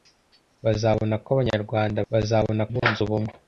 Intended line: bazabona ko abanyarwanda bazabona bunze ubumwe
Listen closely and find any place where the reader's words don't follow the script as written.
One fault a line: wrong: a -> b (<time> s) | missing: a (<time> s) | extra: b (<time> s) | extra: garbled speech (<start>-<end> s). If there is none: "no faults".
no faults